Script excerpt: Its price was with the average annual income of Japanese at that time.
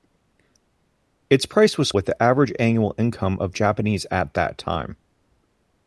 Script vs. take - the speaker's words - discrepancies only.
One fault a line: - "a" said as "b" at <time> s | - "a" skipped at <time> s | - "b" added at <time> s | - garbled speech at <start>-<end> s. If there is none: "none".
none